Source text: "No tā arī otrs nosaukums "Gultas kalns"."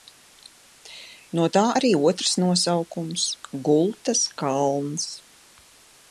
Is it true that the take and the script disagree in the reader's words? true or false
false